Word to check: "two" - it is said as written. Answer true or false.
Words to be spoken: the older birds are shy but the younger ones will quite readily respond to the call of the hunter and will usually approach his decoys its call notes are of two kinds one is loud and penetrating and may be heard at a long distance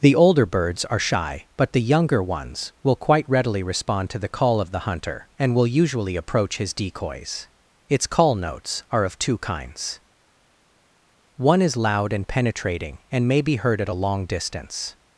true